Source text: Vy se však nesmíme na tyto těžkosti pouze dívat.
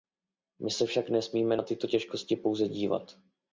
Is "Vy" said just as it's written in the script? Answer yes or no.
no